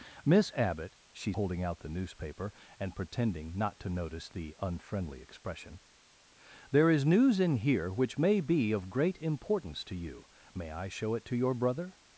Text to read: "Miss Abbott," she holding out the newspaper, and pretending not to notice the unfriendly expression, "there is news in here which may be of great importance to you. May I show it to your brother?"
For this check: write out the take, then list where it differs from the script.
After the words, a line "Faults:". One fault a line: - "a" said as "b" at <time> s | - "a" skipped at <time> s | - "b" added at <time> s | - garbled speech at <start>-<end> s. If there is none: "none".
"Miss Abbott," she holding out the newspaper, and pretending not to notice the unfriendly expression, "there is news in here which may be of great importance to you. May I show it to your brother?"
Faults:
none